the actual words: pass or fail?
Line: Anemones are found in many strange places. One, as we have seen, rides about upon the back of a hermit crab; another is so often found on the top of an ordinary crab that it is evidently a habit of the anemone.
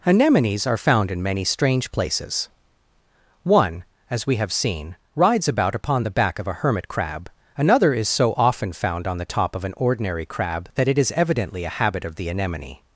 pass